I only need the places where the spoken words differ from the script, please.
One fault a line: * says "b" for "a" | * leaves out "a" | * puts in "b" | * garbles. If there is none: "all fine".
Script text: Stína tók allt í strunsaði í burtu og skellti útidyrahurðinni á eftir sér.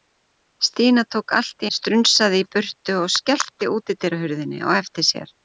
all fine